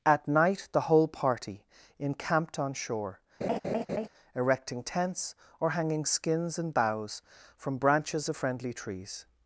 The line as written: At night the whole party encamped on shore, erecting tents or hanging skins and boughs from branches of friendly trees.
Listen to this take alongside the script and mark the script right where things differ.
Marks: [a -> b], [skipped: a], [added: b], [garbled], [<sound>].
At night the whole party encamped on shore, [laugh] erecting tents or hanging skins and boughs from branches of friendly trees.